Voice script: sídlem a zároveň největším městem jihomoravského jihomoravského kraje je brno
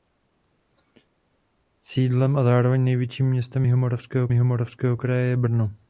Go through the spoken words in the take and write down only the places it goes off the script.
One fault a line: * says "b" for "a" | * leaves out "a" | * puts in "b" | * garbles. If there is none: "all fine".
all fine